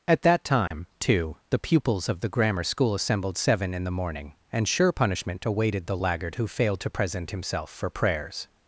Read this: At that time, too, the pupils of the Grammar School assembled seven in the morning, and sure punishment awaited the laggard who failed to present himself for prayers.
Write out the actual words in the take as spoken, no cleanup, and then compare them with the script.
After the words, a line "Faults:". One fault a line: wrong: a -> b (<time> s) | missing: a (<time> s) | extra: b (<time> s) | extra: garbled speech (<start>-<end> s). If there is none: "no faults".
At that time, too, the pupils of the Grammar School assembled seven in the morning, and sure punishment awaited the laggard who failed to present himself for prayers.
Faults:
no faults